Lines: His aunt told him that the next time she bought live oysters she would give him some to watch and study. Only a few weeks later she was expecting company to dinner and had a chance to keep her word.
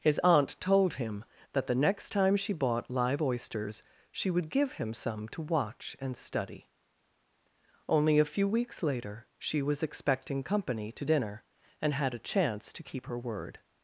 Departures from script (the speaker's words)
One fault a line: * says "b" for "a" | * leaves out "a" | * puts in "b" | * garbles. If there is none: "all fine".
all fine